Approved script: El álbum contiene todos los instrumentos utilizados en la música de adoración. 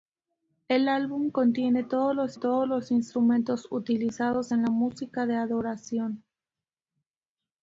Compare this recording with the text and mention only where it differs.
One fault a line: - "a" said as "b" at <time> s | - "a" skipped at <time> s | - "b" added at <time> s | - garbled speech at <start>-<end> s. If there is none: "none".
- "todos los" added at 2.3 s